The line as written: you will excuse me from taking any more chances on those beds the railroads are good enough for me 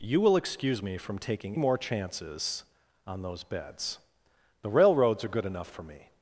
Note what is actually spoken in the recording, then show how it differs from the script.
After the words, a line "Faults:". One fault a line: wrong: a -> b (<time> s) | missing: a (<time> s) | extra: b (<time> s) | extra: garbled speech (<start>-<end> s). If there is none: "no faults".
you will excuse me from taking more chances on those beds the railroads are good enough for me
Faults:
missing: any (1.6 s)